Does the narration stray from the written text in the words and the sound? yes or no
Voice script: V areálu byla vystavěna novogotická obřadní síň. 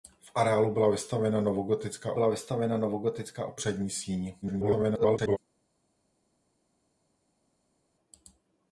yes